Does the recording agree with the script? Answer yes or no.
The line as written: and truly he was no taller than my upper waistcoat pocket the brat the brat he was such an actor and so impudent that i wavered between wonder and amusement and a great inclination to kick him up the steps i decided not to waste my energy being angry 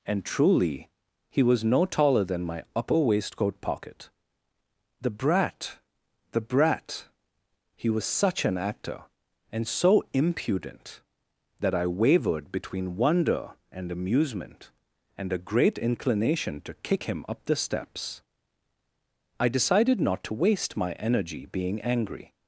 yes